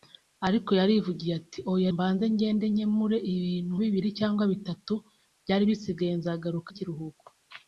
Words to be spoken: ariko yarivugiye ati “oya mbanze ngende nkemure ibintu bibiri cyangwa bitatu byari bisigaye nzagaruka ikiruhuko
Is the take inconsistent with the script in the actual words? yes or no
no